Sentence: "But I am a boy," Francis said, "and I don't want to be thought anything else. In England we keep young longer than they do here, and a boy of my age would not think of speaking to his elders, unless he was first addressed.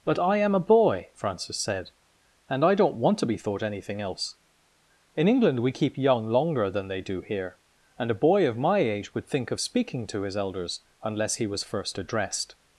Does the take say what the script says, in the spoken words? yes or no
no